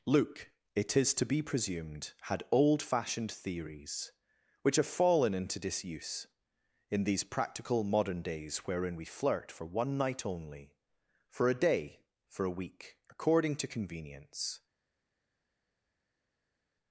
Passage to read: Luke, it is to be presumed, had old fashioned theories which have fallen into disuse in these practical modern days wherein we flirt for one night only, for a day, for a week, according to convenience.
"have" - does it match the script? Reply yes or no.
yes